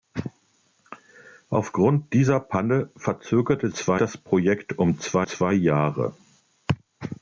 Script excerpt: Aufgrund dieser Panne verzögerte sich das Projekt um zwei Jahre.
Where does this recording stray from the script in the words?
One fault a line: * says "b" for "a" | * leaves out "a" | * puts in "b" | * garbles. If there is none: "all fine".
* says "zwei" for "sich"
* puts in "zwei"